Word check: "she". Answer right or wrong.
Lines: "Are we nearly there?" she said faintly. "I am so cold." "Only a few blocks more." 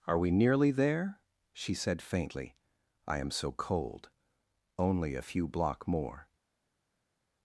right